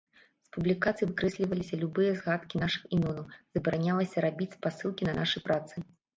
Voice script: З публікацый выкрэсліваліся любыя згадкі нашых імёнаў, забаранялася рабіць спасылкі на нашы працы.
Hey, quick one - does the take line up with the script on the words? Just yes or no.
yes